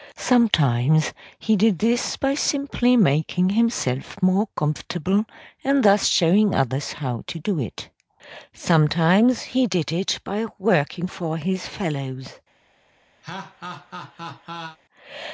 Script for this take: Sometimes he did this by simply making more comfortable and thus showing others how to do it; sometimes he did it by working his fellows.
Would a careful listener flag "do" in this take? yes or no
no